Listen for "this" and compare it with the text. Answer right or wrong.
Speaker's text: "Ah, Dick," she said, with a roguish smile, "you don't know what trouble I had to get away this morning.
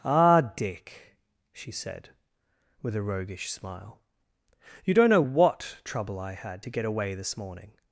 right